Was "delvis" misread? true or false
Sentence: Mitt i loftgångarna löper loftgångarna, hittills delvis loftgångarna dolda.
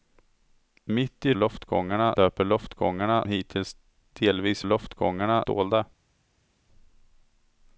false